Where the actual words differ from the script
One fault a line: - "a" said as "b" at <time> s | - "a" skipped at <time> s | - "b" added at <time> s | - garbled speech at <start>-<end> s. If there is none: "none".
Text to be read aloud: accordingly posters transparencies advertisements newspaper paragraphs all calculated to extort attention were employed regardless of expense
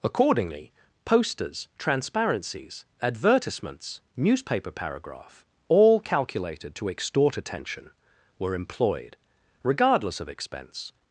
- "paragraphs" said as "paragraph" at 4.7 s